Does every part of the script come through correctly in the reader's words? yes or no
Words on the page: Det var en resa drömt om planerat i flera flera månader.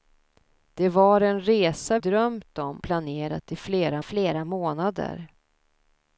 yes